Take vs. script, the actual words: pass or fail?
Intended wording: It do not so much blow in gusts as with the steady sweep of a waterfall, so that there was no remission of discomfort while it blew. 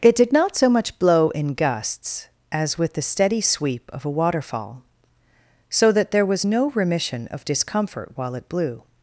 fail